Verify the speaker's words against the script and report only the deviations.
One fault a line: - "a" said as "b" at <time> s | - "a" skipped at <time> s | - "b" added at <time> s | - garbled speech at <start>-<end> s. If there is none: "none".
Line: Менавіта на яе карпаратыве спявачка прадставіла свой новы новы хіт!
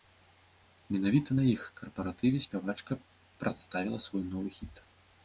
- "яе" said as "іх" at 1.5 s
- "новы" skipped at 4.5 s